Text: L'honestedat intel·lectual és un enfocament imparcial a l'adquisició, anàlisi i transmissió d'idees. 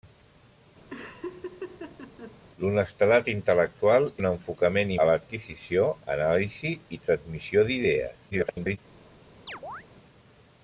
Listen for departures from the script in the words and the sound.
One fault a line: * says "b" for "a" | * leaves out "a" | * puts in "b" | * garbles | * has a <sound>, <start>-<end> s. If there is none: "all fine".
* has a laugh, 0.9-2.4 s
* leaves out "és"
* leaves out "imparcial"
* garbles
* has a chirp, 9.5-9.8 s